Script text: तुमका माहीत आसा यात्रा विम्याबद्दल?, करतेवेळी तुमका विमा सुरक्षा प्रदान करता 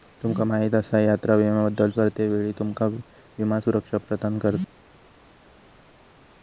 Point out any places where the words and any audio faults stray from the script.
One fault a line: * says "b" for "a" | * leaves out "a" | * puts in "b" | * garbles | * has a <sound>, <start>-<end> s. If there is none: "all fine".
all fine